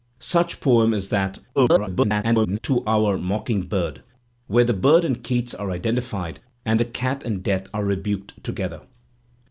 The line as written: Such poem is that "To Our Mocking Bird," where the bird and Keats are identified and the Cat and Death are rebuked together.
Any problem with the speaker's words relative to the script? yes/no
yes